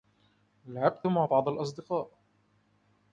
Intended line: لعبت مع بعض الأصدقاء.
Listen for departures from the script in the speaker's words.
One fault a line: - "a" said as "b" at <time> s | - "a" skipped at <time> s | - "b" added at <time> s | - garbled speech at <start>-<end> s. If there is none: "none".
none